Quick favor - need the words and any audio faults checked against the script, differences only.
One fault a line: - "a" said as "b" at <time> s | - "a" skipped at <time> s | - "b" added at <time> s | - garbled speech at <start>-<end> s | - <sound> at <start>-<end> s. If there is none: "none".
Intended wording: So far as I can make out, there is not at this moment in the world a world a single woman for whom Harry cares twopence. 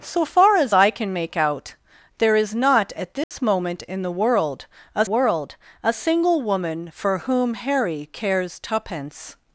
- dropout at 3.2-3.3 s